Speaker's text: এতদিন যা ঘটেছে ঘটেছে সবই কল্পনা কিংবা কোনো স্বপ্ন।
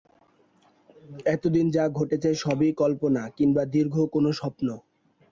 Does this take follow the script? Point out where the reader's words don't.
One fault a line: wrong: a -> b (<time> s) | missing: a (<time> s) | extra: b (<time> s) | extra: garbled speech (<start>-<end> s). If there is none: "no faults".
missing: ঘটেছে (2.3 s)
extra: দীর্ঘ (3.7 s)